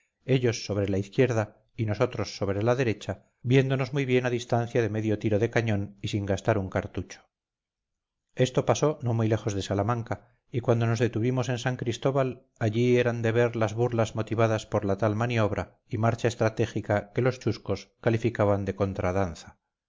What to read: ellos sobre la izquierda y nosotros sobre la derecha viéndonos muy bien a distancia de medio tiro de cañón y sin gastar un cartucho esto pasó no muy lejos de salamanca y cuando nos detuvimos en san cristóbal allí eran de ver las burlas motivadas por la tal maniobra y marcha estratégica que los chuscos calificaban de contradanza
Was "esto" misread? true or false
false